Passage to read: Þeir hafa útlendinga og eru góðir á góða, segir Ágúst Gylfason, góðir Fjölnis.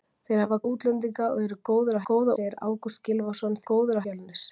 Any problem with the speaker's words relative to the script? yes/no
no